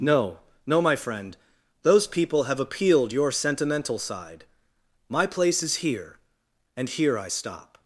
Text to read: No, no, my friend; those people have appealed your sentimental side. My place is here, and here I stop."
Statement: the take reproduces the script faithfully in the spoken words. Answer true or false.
true